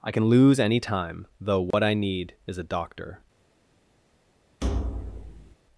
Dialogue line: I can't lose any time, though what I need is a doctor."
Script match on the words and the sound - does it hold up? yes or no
no